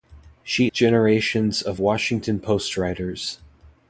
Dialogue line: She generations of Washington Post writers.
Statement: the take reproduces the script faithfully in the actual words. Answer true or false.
true